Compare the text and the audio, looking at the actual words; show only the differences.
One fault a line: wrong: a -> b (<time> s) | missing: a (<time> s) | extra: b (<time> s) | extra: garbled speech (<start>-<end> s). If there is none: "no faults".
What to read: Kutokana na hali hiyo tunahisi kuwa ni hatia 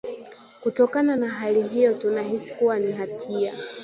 no faults